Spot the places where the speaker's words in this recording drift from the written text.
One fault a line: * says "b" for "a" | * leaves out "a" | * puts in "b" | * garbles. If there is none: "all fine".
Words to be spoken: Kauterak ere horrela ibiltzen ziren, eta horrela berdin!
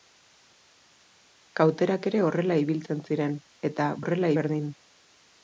all fine